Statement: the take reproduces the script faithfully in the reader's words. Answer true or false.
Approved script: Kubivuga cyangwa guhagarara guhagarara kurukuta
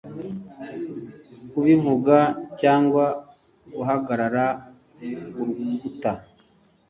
false